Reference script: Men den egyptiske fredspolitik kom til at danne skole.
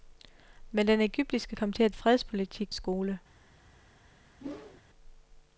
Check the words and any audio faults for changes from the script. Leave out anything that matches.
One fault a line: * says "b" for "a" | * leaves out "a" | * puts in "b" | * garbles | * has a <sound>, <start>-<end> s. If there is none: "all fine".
* leaves out "fredspolitik"
* says "fredspolitik" for "danne"
* has a whoosh, 4.4-4.8 s